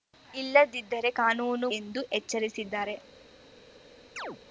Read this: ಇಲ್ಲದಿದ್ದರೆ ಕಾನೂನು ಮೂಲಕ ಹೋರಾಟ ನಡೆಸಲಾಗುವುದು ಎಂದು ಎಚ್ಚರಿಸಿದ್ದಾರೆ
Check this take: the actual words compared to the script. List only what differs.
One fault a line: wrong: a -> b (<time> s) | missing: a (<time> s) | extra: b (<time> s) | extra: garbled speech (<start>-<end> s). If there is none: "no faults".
missing: ಮೂಲಕ ಹೋರಾಟ ನಡೆಸಲಾಗುವುದು (1.7 s)